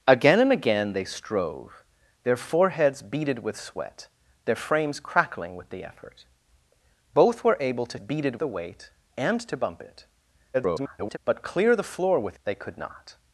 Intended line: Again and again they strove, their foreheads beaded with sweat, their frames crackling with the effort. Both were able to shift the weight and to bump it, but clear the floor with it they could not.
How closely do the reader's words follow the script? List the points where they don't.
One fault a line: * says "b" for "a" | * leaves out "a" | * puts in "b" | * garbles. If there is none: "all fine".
* says "beaded" for "shift"
* garbles
* leaves out "it"